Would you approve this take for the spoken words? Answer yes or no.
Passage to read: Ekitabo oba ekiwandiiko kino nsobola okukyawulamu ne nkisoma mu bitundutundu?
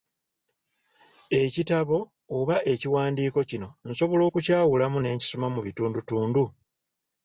yes